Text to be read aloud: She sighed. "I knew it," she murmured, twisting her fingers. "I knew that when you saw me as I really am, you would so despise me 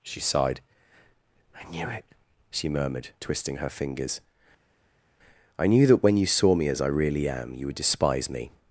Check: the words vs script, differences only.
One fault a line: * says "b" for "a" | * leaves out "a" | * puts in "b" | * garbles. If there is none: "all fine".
* leaves out "so"